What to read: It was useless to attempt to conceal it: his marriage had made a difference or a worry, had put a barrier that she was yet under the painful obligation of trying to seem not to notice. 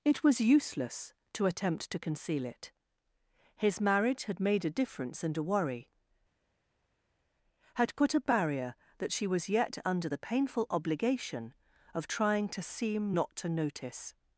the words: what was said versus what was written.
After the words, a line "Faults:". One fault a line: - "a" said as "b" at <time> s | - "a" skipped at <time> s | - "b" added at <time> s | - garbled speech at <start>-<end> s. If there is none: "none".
It was useless to attempt to conceal it: his marriage had made a difference and a worry, had put a barrier that she was yet under the painful obligation of trying to seem not to notice.
Faults:
- "or" said as "and" at 5.2 s